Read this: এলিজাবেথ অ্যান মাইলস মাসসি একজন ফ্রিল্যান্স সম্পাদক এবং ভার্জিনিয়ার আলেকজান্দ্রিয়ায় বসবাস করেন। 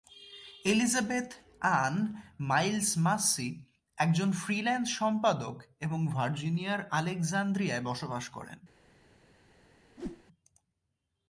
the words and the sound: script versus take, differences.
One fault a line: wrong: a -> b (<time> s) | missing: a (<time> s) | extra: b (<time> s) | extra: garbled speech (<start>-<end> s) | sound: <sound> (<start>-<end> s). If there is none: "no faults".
sound: whoosh (10.0-10.2 s)